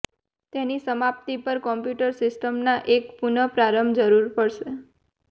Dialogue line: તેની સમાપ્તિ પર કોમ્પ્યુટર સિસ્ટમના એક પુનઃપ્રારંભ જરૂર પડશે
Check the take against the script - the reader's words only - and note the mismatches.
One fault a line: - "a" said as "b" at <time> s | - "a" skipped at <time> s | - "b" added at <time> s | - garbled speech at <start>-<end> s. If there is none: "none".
none